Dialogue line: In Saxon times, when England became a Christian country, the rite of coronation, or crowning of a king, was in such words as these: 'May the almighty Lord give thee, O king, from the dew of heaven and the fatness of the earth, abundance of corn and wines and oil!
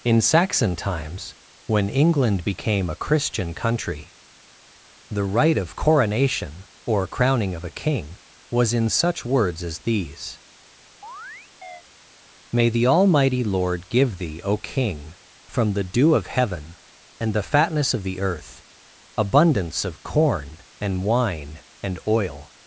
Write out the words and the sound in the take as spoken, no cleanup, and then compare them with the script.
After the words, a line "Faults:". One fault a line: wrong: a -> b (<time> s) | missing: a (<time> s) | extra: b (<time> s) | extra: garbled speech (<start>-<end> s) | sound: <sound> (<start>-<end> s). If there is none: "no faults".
In Saxon times, when England became a Christian country, the rite of coronation, or crowning of a king, was in such words as these: 'May the almighty Lord give thee, O king, from the dew of heaven and the fatness of the earth, abundance of corn and wine and oil!
Faults:
sound: chirp (11.0-11.8 s)
wrong: wines -> wine (21.0 s)